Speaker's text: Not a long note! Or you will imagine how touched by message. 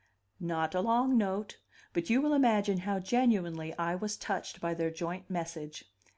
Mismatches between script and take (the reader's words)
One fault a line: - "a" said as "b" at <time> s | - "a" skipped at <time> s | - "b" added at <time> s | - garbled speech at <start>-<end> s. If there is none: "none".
- "Or" said as "But" at 1.9 s
- "genuinely I was" added at 3.0 s
- "their joint" added at 4.7 s